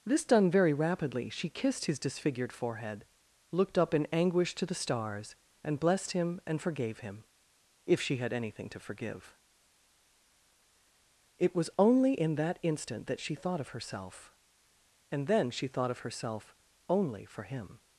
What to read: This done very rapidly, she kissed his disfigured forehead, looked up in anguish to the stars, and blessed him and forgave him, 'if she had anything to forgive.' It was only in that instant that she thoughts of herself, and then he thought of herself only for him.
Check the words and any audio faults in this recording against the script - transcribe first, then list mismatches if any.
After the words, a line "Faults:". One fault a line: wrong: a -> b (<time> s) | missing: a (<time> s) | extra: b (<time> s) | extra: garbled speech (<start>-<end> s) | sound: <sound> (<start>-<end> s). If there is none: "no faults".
This done very rapidly, she kissed his disfigured forehead, looked up in anguish to the stars, and blessed him and forgave him, 'if she had anything to forgive.' It was only in that instant that she thought of herself, and then she thought of herself only for him.
Faults:
wrong: thoughts -> thought (13.4 s)
wrong: he -> she (15.5 s)